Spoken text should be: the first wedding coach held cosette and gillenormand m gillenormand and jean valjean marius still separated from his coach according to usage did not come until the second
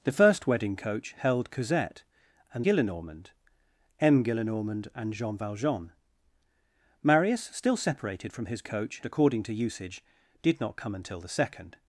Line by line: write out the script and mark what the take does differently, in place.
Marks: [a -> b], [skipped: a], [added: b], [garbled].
the first wedding coach held cosette and gillenormand m gillenormand and jean valjean marius still separated from his coach according to usage did not come until the second